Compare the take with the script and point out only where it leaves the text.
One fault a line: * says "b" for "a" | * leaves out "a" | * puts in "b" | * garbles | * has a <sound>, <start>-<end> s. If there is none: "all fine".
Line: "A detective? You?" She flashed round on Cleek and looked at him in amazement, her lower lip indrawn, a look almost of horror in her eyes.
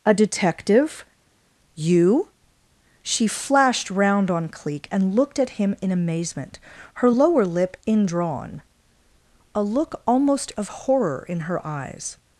all fine